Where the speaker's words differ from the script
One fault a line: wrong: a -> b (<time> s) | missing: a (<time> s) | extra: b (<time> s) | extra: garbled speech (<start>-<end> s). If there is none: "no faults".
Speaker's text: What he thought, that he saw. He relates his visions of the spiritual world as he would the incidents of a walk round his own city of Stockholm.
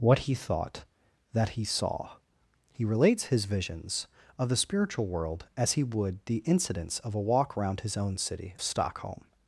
missing: of (8.6 s)